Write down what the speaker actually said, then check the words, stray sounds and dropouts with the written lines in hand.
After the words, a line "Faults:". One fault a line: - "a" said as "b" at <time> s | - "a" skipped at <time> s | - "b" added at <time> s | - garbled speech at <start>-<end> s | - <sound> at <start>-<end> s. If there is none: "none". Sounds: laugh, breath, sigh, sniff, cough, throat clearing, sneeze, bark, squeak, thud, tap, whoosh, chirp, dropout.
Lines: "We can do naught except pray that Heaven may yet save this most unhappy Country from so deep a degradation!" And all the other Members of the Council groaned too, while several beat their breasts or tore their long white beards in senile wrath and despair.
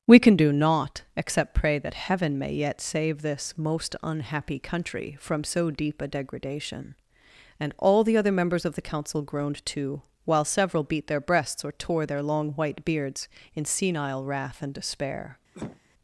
"We can do naught except pray that Heaven may yet save this most unhappy Country from so deep a degradation!" And all the other Members of the Council groaned too, while several beat their breasts or tore their long white beards in senile wrath and despair.
Faults:
- cough at 15.5-15.8 s